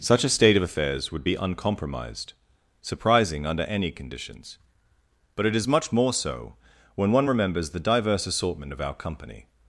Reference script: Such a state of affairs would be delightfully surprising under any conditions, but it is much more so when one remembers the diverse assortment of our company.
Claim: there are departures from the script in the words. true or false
true